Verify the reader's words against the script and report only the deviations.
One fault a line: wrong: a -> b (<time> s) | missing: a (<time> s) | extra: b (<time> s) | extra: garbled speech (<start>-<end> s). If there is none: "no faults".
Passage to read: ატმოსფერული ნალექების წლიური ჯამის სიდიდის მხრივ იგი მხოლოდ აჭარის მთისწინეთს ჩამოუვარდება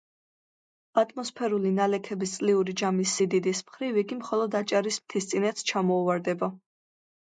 no faults